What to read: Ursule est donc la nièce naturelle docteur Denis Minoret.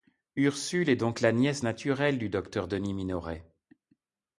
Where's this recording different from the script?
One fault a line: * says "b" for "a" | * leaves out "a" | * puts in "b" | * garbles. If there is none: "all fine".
* puts in "du"